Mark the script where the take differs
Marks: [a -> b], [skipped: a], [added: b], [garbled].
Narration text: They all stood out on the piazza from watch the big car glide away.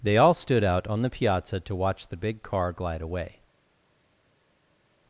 They all stood out on the piazza [from -> to] watch the big car glide away.